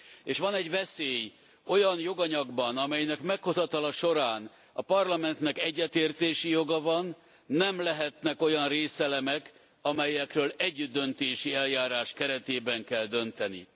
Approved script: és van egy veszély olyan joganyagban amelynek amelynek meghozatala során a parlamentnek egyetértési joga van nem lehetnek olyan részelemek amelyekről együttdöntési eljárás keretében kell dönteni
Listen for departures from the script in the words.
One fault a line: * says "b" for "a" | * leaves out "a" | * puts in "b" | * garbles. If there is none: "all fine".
* leaves out "amelynek"